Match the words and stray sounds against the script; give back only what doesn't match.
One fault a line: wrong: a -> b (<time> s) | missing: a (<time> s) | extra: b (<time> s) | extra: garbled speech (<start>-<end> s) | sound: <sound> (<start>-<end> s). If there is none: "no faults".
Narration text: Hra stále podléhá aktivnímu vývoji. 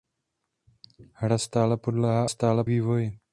wrong: aktivnímu -> stále (2.2 s)